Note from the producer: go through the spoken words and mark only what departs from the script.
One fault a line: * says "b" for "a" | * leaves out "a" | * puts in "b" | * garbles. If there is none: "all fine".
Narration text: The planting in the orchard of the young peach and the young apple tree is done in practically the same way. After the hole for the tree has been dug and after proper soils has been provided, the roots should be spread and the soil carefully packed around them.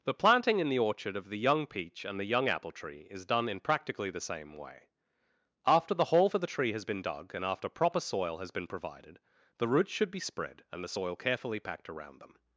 * says "soil" for "soils"